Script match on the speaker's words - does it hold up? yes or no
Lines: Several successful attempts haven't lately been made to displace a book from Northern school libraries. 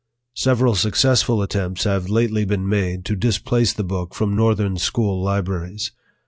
no